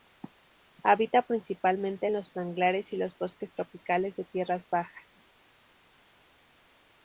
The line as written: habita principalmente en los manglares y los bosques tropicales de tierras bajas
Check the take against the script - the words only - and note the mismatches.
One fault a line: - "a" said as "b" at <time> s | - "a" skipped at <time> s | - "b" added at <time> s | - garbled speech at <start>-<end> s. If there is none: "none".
none